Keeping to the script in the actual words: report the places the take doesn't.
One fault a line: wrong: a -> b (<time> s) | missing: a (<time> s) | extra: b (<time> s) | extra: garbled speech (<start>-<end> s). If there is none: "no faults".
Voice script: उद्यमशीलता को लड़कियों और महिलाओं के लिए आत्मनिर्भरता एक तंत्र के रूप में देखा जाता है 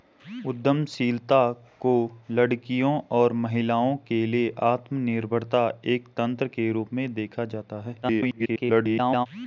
extra: garbled speech (8.0-9.3 s)